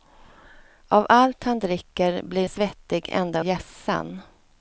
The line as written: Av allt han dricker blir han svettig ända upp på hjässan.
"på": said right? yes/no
no